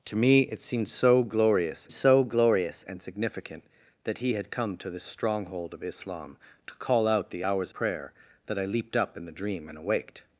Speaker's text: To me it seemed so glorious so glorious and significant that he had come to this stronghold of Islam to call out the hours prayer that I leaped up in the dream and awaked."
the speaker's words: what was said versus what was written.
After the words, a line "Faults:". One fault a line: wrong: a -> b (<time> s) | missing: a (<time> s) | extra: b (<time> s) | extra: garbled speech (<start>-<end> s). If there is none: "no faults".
To me it seemed so glorious so glorious and significant that he had come to this stronghold of Islam to call out the hours prayer that I leaped up in the dream and awaked."
Faults:
no faults